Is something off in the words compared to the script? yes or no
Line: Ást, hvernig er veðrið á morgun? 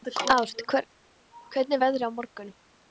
no